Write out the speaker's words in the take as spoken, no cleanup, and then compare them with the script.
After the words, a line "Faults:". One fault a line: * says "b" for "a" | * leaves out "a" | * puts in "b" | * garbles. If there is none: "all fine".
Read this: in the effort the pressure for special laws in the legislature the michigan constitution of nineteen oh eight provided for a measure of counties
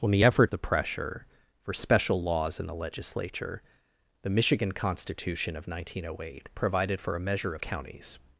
in the effort the pressure for special laws in the legislature the michigan constitution of nineteen oh eight provided for a measure of counties
Faults:
all fine